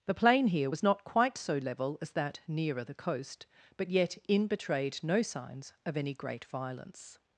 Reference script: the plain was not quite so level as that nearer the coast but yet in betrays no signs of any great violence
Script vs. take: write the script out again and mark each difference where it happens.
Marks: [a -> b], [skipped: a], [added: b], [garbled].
the plain [added: here] was not quite so level as that nearer the coast but yet in [betrays -> betrayed] no signs of any great violence